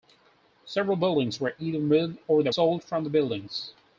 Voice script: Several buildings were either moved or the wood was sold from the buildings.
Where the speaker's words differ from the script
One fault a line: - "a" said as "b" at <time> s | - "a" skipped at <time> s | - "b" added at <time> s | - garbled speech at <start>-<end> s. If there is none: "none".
- "wood was" skipped at 2.5 s